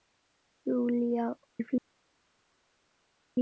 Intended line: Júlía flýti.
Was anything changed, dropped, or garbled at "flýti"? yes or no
no